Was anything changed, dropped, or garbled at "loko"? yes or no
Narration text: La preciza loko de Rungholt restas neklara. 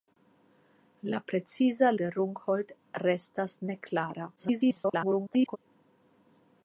yes